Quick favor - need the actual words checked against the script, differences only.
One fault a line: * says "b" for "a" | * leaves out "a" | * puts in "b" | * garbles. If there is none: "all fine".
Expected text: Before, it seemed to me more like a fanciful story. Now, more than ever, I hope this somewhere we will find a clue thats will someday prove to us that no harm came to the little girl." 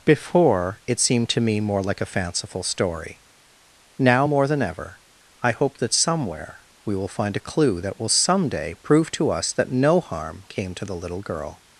* says "that" for "this"
* says "that" for "thats"